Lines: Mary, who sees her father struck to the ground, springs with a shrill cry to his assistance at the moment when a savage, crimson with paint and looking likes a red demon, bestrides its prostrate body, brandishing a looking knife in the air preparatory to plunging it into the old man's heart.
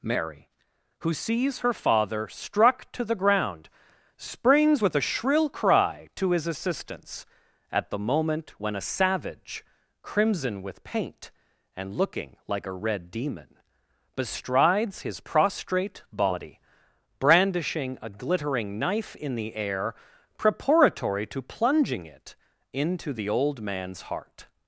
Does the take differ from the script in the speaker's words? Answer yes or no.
yes